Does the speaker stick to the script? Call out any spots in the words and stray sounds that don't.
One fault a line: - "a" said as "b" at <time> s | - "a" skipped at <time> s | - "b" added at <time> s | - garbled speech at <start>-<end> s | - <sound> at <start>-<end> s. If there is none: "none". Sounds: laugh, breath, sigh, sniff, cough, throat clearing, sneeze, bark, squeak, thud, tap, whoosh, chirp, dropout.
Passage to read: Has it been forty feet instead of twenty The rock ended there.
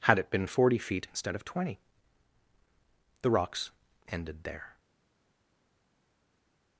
- "Has" said as "Had" at 0.0 s
- "rock" said as "rocks" at 3.3 s